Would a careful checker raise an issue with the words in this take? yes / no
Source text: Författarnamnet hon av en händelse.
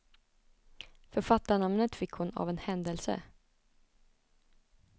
yes